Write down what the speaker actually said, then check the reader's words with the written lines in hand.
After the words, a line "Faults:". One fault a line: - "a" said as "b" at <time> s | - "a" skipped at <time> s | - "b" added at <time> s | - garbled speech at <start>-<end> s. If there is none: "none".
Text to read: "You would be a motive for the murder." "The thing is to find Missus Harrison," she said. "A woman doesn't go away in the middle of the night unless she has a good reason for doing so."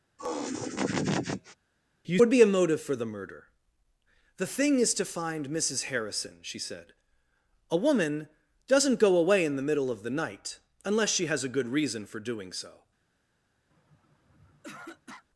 "You would be a motive for the murder." "The thing is to find Missus Harrison," she said. "A woman doesn't go away in the middle of the night unless she has a good reason for doing so."
Faults:
none